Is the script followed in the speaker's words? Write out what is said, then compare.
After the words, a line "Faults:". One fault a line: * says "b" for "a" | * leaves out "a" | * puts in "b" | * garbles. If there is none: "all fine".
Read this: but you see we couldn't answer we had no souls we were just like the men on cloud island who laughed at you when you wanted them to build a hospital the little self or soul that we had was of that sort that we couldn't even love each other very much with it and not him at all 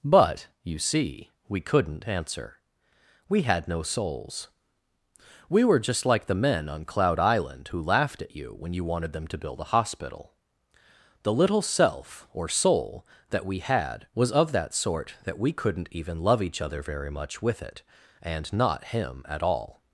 but you see we couldn't answer we had no souls we were just like the men on cloud island who laughed at you when you wanted them to build a hospital the little self or soul that we had was of that sort that we couldn't even love each other very much with it and not him at all
Faults:
all fine